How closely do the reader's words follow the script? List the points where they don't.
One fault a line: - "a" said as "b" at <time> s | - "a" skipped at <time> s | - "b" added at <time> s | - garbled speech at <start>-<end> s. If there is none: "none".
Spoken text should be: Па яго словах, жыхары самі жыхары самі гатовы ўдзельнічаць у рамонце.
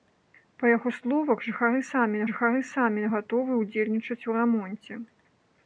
none